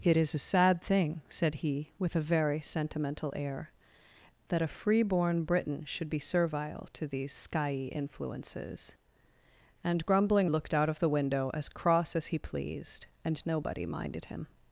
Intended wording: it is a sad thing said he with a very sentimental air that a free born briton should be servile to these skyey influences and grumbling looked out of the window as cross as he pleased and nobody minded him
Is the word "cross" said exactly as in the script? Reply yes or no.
yes